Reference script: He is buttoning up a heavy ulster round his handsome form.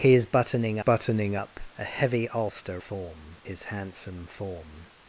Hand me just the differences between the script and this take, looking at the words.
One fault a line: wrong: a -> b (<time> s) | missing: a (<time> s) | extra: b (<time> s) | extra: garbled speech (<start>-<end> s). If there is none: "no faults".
extra: buttoning (0.8 s)
wrong: round -> form (2.8 s)